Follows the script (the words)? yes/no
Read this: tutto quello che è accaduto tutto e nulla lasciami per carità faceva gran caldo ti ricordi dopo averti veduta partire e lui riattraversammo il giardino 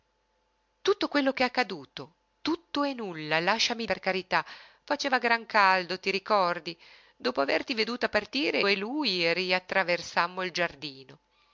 yes